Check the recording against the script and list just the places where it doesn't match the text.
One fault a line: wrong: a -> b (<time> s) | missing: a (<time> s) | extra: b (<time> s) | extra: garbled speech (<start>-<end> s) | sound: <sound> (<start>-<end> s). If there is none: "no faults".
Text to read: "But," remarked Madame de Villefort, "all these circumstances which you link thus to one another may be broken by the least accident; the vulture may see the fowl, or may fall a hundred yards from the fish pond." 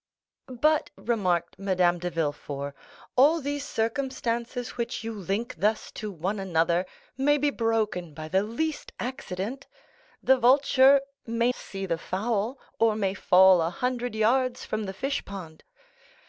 no faults